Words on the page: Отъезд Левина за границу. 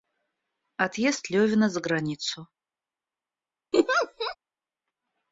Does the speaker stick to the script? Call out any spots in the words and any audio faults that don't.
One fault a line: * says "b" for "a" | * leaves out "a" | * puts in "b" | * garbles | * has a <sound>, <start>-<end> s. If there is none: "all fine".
* has a laugh, 3.7-4.4 s